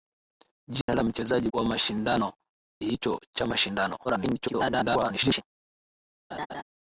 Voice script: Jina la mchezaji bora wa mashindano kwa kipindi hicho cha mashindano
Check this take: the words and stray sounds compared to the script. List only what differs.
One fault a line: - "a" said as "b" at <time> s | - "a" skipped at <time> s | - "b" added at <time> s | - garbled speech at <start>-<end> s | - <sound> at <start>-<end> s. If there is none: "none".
- dropout at 0.8-0.9 s
- "bora" skipped at 1.5 s
- "kwa kipindi" skipped at 2.3 s
- garbled speech at 4.0-5.4 s
- laugh at 6.3-6.6 s